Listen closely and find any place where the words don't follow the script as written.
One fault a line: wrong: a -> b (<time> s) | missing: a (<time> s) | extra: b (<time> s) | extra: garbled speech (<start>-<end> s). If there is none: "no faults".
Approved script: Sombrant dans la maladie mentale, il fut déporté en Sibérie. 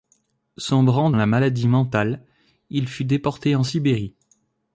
missing: dans (1.1 s)